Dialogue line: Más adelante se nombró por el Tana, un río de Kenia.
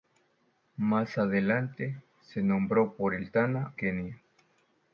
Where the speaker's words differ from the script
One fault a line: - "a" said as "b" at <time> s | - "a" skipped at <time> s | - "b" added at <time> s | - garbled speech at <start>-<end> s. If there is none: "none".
- "un río de" skipped at 3.7 s